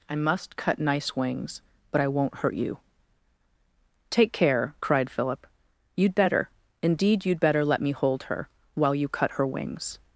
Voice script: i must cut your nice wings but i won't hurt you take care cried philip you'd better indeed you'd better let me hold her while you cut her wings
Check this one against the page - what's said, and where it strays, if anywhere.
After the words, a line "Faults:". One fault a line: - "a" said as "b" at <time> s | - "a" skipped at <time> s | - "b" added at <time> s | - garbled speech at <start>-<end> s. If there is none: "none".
i must cut nice wings but i won't hurt you take care cried philip you'd better indeed you'd better let me hold her while you cut her wings
Faults:
- "your" skipped at 0.8 s